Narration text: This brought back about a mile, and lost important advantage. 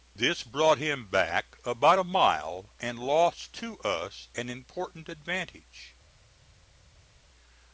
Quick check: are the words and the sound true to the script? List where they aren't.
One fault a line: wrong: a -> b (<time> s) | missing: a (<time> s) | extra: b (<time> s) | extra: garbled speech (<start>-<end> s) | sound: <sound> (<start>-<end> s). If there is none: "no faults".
extra: him (0.8 s)
extra: to us an (3.5 s)